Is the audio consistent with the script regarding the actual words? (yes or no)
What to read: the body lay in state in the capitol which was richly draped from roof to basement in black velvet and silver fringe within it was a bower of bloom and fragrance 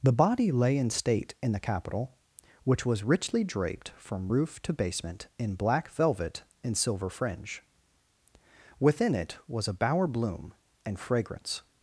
no